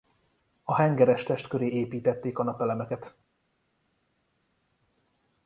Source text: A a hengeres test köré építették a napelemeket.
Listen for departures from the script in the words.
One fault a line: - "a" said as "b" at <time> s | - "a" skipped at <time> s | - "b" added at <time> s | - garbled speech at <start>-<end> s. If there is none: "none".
- "a" skipped at 0.8 s